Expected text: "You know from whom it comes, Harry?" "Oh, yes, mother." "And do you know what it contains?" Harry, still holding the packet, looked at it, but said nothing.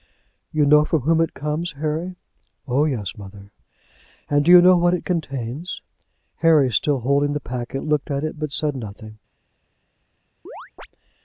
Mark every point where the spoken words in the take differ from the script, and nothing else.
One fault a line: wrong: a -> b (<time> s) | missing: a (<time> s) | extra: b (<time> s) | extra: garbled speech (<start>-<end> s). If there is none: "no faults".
no faults